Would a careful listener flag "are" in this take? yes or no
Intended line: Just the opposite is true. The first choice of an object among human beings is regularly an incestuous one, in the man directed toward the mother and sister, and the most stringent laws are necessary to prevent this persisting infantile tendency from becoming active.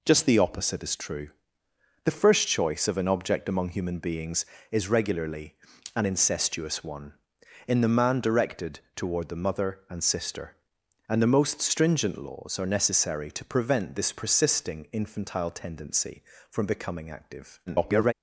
no